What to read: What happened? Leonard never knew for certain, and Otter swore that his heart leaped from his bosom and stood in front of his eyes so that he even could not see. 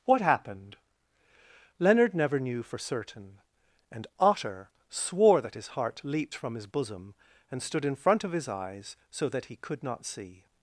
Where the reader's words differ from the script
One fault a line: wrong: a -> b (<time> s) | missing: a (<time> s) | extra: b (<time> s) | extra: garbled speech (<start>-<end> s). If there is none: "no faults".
missing: even (9.5 s)